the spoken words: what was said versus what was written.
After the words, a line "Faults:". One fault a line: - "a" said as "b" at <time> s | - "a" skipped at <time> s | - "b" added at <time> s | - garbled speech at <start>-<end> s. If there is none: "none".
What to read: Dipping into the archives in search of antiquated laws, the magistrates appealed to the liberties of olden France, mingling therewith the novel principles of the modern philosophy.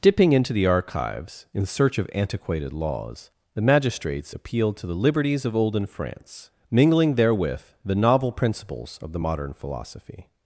Dipping into the archives in search of antiquated laws, the magistrates appealed to the liberties of olden France, mingling therewith the novel principles of the modern philosophy.
Faults:
none